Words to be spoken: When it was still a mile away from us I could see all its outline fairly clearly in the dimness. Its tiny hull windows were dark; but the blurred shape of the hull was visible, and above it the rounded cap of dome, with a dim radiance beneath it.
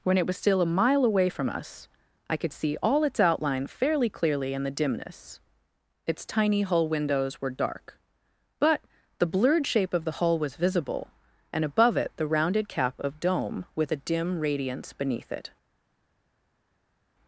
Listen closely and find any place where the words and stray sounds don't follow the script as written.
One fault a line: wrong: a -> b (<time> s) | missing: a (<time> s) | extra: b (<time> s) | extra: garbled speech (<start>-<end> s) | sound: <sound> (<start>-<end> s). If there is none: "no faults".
no faults